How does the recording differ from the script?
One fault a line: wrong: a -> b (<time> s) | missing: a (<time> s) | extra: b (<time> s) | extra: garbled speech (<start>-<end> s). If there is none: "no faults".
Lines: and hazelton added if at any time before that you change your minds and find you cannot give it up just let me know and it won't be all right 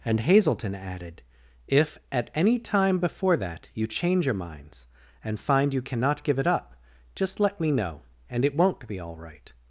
no faults